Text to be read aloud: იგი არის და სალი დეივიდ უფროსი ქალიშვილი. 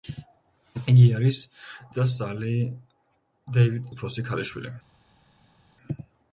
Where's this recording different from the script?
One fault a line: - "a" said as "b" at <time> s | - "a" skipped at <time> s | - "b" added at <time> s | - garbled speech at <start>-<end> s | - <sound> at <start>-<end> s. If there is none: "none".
none